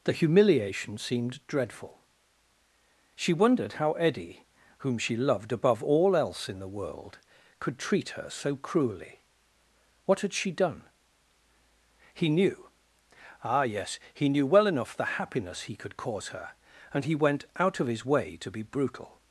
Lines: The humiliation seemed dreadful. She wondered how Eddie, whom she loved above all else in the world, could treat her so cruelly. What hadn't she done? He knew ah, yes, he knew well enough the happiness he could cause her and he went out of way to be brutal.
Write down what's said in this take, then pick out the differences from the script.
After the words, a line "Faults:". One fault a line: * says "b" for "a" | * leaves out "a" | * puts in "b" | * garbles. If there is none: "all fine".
The humiliation seemed dreadful. She wondered how Eddie, whom she loved above all else in the world, could treat her so cruelly. What had she done? He knew ah, yes, he knew well enough the happiness he could cause her and he went out of his way to be brutal.
Faults:
* says "had" for "hadn't"
* puts in "his"